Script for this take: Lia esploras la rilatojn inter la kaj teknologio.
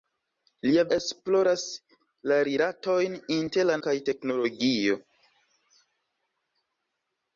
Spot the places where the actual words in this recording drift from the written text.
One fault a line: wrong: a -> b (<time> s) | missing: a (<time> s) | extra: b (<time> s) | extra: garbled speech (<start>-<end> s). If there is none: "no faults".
no faults